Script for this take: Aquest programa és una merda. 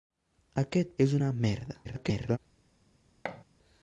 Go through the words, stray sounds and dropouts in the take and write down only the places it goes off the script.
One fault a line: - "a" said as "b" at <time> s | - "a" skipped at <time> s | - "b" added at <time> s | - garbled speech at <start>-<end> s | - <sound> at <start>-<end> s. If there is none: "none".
- "programa" skipped at 0.9 s
- garbled speech at 1.8-2.4 s
- thud at 3.2-3.4 s